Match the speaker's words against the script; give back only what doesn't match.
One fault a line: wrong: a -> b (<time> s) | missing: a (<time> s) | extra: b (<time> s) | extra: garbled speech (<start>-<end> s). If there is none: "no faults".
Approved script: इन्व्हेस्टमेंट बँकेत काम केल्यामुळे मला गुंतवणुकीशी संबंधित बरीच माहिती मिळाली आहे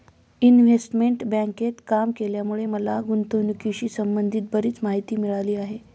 no faults